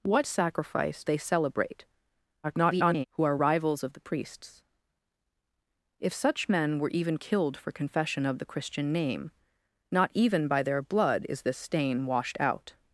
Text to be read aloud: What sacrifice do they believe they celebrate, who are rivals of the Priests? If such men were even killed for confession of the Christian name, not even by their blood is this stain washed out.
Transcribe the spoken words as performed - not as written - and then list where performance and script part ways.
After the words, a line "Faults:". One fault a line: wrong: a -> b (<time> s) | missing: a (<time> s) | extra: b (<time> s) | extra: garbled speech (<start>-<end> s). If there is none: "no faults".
What sacrifice they celebrate, [garbled] who are rivals of the Priests? If such men were even killed for confession of the Christian name, not even by their blood is this stain washed out.
Faults:
missing: do they believe (1.0 s)
extra: garbled speech (2.4-3.1 s)